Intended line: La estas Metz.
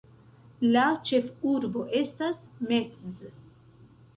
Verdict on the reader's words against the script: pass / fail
fail